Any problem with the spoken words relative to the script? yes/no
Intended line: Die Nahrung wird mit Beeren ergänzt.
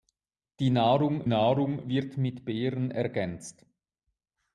yes